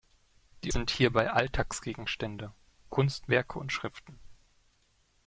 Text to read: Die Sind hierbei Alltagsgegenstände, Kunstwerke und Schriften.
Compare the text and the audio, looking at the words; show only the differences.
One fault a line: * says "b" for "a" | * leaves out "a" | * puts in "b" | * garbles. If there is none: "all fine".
all fine